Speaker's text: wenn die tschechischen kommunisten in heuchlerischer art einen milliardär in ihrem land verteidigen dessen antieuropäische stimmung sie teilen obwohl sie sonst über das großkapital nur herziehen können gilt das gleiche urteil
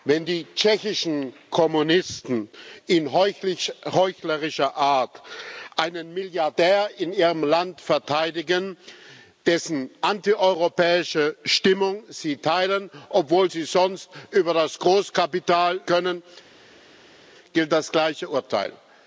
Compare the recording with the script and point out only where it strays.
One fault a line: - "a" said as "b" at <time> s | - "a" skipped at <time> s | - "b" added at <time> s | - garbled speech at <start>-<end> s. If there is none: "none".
- "nur herziehen" skipped at 15.8 s